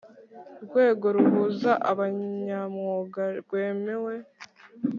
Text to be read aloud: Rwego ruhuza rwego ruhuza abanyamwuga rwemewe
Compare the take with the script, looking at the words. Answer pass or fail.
fail